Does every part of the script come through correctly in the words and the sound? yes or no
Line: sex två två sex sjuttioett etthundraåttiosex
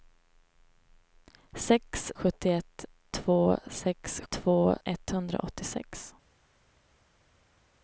no